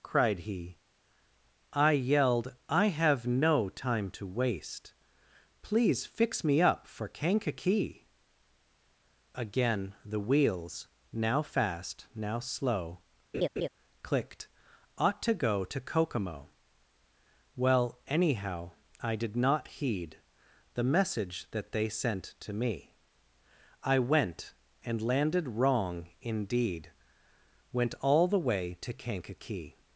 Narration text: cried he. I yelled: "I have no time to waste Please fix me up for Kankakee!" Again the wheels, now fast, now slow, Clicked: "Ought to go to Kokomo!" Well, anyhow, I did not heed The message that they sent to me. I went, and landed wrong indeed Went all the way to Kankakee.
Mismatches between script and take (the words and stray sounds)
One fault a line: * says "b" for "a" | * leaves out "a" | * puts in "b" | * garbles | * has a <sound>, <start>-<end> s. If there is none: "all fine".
* has a laugh, 13.3-13.7 s